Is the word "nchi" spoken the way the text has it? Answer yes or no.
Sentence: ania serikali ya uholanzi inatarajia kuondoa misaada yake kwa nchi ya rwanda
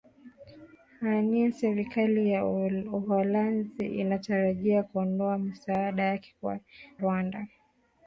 no